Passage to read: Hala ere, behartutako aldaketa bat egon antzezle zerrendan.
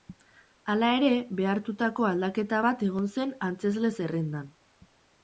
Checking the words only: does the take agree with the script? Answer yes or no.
no